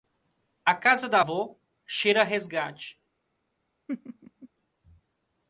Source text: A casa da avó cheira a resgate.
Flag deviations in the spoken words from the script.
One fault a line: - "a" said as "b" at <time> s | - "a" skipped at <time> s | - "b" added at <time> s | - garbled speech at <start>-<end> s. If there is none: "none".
none